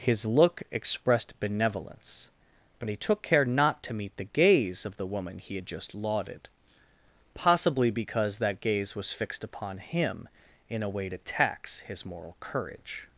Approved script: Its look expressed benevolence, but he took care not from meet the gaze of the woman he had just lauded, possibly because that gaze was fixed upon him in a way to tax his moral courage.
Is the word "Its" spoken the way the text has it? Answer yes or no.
no